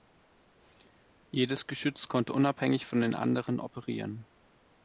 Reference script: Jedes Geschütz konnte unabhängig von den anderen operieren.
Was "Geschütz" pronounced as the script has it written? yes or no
yes